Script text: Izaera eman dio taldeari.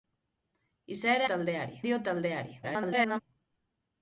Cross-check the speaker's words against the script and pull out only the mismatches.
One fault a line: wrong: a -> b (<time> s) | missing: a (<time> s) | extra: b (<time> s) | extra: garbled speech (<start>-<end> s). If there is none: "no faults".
wrong: eman -> taldeari (1.3 s)
extra: garbled speech (2.6-3.2 s)